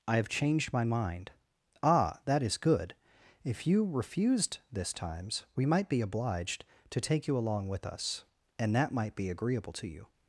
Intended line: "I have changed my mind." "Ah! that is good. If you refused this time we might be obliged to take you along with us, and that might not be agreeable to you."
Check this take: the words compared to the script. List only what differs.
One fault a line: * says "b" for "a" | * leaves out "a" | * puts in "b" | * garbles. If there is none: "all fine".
* says "times" for "time"
* leaves out "not"